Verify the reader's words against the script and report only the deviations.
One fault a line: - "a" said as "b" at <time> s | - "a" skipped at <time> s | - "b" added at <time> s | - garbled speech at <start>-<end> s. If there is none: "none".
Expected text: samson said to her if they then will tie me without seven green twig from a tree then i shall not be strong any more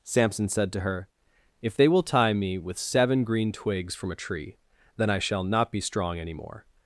- "then" skipped at 1.9 s
- "without" said as "with" at 2.6 s
- "twig" said as "twigs" at 3.5 s